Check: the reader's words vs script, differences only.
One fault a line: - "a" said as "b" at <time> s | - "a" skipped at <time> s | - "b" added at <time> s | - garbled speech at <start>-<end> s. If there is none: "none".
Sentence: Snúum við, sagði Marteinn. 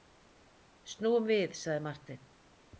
none